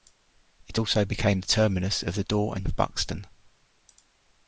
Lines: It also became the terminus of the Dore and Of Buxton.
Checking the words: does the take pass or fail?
pass